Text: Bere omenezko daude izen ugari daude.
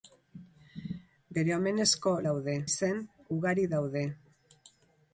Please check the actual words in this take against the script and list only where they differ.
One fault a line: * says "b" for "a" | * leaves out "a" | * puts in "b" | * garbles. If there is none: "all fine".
all fine